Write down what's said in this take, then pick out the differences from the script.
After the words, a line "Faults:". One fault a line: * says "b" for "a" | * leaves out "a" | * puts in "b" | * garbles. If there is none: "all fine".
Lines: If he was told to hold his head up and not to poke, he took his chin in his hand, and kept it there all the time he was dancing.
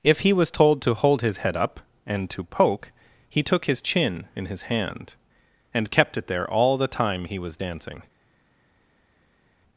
If he was told to hold his head up and to poke, he took his chin in his hand, and kept it there all the time he was dancing.
Faults:
* leaves out "not"